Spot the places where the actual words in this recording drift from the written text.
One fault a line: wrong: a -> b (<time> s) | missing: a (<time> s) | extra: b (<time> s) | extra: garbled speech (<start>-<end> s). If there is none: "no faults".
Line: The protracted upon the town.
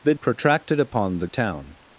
no faults